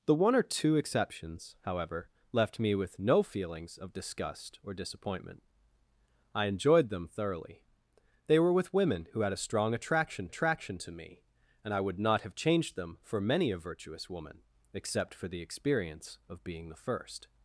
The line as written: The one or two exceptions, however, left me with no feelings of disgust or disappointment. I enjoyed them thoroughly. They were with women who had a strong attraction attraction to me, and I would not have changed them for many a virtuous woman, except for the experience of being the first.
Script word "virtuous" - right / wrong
right